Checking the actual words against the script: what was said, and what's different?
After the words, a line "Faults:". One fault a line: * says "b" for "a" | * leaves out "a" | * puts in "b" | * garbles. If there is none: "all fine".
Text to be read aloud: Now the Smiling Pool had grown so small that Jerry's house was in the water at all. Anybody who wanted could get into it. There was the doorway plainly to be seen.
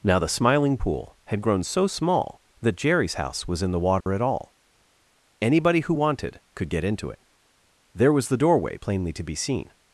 Now the Smiling Pool had grown so small that Jerry's house was in the water at all. Anybody who wanted could get into it. There was the doorway plainly to be seen.
Faults:
all fine